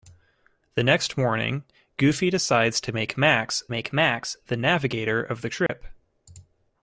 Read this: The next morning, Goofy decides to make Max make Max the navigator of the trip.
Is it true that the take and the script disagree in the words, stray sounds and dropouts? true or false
true